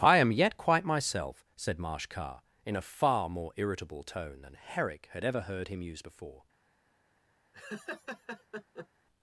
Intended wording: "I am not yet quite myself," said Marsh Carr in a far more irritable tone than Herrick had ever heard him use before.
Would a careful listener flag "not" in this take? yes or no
yes